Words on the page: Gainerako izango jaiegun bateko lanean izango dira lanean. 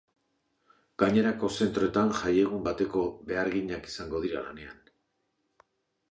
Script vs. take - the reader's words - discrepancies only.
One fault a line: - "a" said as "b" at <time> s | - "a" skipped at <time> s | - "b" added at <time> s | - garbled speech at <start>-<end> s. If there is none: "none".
- "izango" said as "zentroetan" at 1.6 s
- "lanean" said as "beharginak" at 3.3 s